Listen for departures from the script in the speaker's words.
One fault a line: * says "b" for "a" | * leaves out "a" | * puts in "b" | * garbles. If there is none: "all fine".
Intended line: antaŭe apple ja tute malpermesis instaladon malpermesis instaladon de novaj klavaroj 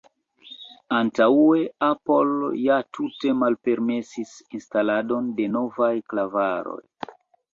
* leaves out "malpermesis instaladon"